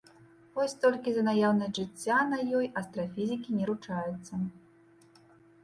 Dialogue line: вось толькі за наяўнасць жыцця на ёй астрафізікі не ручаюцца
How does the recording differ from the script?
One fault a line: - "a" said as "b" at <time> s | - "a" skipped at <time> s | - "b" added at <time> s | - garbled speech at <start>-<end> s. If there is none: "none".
none